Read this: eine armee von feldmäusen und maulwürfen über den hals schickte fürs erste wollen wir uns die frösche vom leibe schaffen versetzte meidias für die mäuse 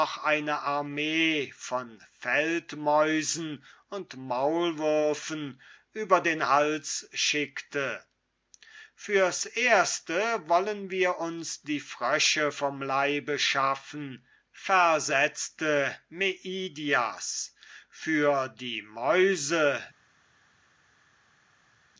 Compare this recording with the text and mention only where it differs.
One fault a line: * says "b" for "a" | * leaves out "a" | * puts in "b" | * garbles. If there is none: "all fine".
all fine